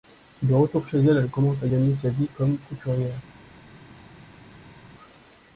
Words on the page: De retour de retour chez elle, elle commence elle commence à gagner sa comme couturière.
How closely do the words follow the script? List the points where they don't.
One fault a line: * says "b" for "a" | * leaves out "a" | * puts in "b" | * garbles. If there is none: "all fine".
* leaves out "de retour"
* leaves out "elle commence"
* puts in "vie"